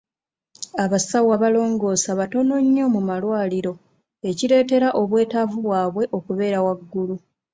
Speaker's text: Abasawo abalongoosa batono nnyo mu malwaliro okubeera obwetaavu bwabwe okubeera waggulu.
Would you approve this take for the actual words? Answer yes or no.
no